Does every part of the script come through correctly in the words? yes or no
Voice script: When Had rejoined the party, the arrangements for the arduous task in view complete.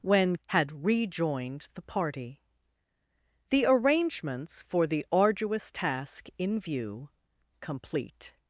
yes